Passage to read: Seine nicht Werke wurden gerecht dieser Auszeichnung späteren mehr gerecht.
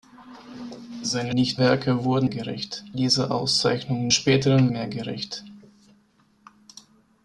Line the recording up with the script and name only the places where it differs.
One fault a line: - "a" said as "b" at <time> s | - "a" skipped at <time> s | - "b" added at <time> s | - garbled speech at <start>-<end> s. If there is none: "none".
none